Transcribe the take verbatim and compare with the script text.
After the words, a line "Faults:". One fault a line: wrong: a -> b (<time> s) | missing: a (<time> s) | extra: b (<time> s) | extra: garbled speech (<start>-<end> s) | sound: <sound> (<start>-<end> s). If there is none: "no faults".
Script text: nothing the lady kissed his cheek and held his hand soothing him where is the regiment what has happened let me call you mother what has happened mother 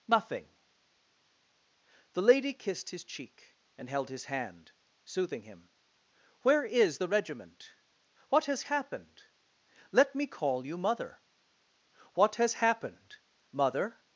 nothing the lady kissed his cheek and held his hand soothing him where is the regiment what has happened let me call you mother what has happened mother
Faults:
no faults